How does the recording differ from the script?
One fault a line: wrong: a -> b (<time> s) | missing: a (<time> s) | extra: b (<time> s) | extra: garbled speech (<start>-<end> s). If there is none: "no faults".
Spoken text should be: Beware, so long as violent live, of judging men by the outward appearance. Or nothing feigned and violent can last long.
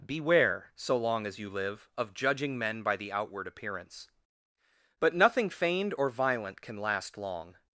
wrong: violent -> you (1.4 s)
wrong: Or -> But (5.0 s)
wrong: and -> or (6.0 s)